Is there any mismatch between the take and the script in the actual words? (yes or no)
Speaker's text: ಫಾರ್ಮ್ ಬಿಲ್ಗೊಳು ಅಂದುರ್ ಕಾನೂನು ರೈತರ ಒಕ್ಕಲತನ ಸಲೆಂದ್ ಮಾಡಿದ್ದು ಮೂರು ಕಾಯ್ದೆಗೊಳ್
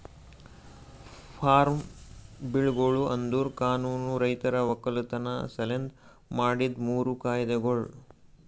no